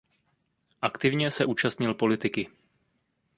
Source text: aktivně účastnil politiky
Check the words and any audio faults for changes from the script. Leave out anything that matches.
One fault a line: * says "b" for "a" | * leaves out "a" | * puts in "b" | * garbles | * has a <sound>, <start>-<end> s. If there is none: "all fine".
* puts in "se"